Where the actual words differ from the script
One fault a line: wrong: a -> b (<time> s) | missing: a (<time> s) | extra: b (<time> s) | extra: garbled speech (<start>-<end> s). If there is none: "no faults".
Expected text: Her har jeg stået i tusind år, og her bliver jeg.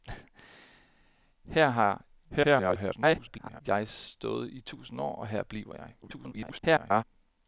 extra: garbled speech (2.3-3.6 s)
extra: garbled speech (6.0-7.0 s)